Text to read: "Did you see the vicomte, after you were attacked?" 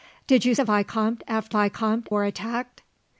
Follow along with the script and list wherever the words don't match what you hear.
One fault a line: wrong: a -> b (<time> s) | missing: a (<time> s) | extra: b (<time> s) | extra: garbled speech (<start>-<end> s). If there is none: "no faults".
missing: see (0.6 s)
wrong: you -> vicomte (1.5 s)